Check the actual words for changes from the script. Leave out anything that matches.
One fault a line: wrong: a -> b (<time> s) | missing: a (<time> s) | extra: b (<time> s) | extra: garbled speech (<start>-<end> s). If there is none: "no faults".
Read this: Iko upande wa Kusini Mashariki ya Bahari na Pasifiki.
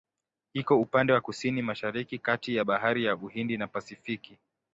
extra: kati (2.2 s)
extra: ya Uhindi (3.0 s)